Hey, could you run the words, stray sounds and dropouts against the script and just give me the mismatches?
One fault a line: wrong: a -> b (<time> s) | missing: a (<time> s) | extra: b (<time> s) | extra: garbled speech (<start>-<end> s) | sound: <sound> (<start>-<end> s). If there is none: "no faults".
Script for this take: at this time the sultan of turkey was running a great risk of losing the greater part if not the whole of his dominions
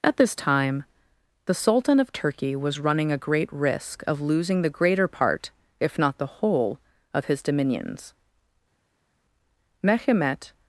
extra: mehemet (9.8 s)